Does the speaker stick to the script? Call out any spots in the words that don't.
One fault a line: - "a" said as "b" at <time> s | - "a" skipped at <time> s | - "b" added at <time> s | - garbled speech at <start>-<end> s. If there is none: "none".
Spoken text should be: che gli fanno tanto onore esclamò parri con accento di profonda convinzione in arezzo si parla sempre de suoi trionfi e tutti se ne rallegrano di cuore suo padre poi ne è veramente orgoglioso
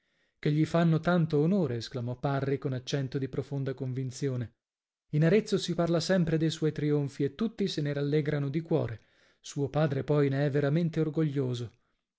none